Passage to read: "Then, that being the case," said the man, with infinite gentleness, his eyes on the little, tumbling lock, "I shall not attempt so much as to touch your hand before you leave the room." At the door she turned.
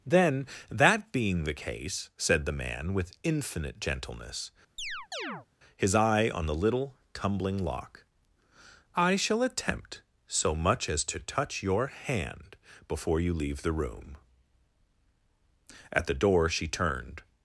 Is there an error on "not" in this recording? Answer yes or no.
yes